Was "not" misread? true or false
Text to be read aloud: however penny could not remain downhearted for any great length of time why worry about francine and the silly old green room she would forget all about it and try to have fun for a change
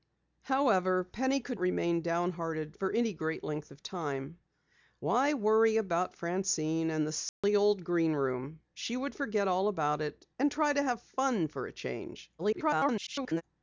true